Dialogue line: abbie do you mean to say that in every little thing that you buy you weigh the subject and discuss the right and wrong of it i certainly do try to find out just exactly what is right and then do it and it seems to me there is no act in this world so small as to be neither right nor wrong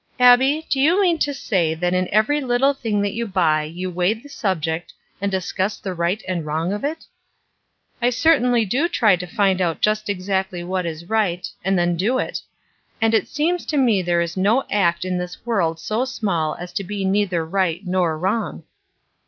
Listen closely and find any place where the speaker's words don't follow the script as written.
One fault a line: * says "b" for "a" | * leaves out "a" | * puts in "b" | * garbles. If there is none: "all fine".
all fine